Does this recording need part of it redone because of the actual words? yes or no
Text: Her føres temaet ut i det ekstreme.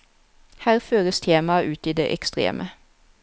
no